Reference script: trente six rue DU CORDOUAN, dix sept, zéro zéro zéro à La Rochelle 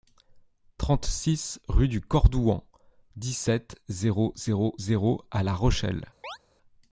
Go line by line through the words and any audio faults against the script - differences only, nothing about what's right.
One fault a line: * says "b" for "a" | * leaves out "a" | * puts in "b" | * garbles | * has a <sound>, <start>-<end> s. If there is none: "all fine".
* has a chirp, 6.2-6.4 s